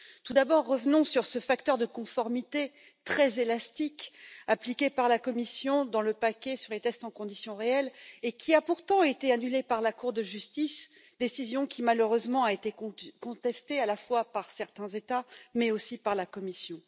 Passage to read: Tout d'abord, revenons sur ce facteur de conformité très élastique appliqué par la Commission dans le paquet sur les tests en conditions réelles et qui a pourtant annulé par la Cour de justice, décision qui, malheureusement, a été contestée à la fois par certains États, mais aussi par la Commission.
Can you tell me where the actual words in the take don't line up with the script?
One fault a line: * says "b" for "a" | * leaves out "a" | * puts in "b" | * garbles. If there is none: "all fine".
* puts in "été"